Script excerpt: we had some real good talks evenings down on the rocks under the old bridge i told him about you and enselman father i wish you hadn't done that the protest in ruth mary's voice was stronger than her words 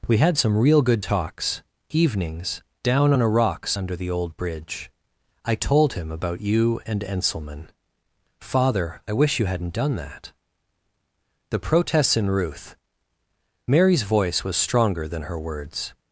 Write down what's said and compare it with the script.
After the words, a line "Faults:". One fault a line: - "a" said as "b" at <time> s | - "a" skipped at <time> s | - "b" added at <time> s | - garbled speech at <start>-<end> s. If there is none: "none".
we had some real good talks evenings down on a rocks under the old bridge i told him about you and enselman father i wish you hadn't done that the protests in ruth mary's voice was stronger than her words
Faults:
- "the" said as "a" at 3.2 s
- "protest" said as "protests" at 11.6 s